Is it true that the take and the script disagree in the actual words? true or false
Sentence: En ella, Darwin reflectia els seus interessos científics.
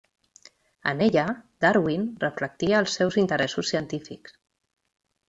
false